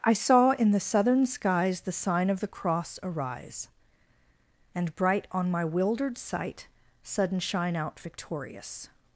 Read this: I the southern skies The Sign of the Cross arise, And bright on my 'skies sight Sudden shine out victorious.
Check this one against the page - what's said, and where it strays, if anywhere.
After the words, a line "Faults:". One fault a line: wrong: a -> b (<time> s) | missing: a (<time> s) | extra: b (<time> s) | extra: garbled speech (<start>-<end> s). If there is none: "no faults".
I saw in the southern skies The Sign of the Cross arise, And bright on my 'wildered sight Sudden shine out victorious.
Faults:
extra: saw in (0.1 s)
wrong: skies -> wildered (5.6 s)